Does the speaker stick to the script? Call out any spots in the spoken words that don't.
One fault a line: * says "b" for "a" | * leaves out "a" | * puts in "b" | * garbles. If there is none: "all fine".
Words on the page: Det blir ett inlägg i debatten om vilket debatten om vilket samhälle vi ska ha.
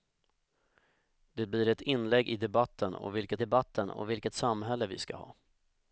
all fine